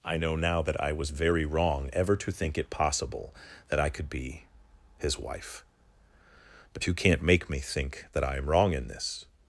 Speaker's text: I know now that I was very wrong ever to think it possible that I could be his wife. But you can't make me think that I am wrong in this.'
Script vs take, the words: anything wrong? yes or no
no